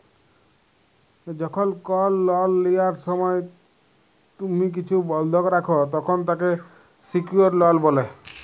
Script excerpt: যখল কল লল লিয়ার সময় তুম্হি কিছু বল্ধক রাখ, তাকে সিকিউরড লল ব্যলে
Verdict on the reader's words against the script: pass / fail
fail